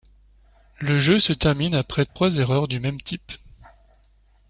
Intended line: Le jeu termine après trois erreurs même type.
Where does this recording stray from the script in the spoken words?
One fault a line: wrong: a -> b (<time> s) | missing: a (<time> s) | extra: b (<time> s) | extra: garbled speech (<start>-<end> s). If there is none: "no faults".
extra: se (1.2 s)
extra: du (2.7 s)